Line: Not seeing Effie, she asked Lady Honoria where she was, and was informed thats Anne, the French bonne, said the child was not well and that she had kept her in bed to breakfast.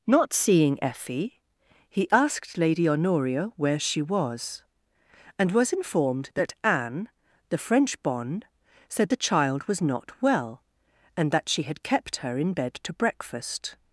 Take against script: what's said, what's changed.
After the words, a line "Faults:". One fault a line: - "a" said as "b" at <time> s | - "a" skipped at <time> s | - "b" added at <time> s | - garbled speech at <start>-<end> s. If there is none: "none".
Not seeing Effie, he asked Lady Honoria where she was, and was informed that Anne, the French bonne, said the child was not well and that she had kept her in bed to breakfast.
Faults:
- "she" said as "he" at 1.9 s
- "thats" said as "that" at 6.3 s